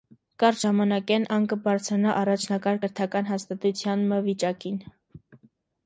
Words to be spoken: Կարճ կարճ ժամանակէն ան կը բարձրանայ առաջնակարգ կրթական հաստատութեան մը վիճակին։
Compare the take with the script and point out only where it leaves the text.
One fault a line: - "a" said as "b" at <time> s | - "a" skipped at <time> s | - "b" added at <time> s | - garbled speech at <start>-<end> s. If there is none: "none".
- "կարճ" skipped at 0.6 s